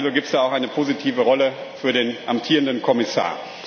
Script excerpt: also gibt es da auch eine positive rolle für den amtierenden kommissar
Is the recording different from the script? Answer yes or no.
no